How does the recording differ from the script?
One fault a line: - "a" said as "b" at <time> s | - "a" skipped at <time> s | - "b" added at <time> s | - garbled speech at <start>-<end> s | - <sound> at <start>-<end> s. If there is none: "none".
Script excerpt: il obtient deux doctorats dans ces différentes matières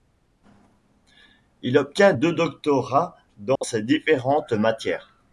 - dropout at 3.6-3.6 s